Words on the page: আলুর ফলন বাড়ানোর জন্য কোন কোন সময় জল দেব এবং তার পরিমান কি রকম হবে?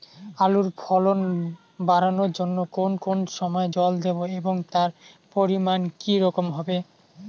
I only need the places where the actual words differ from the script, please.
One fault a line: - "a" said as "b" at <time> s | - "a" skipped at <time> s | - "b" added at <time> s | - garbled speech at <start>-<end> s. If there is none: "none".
none